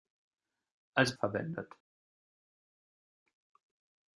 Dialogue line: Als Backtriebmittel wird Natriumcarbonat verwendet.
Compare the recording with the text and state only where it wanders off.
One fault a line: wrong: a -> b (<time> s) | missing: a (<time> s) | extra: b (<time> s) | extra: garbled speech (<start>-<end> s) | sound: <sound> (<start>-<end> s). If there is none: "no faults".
missing: Backtriebmittel wird Natriumcarbonat (1.1 s)